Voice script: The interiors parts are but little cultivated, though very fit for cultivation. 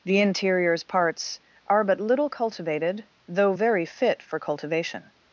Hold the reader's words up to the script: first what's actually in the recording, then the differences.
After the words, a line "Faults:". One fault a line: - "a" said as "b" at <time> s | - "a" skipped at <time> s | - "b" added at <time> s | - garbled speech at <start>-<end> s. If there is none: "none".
The interiors parts are but little cultivated, though very fit for cultivation.
Faults:
none